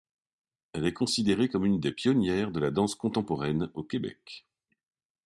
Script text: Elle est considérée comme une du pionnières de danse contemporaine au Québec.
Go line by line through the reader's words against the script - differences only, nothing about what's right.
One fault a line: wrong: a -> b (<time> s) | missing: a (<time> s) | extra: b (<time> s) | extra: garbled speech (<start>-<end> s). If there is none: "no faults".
wrong: du -> des (1.8 s)
extra: la (2.6 s)